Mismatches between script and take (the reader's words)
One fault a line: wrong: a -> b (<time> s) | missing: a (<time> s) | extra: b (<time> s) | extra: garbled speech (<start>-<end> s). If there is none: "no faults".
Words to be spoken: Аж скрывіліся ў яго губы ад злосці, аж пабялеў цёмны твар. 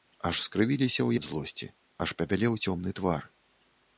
missing: яго губы (1.1 s)